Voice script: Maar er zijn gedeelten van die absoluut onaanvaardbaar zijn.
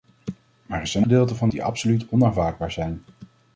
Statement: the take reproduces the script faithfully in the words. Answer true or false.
true